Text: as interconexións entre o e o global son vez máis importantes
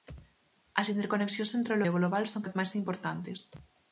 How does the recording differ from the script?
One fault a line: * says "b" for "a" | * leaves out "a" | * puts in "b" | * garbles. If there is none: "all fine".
all fine